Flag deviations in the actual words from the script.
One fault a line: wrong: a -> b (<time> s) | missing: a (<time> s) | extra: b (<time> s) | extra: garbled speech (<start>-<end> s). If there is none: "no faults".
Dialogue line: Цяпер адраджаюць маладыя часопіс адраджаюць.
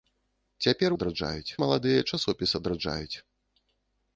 no faults